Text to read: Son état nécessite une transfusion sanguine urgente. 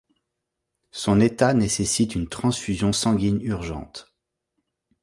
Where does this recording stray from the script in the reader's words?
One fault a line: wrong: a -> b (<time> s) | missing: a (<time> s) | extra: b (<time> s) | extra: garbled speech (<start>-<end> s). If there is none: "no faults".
no faults